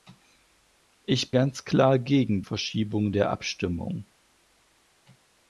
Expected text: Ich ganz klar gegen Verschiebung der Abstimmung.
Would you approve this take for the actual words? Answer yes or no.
yes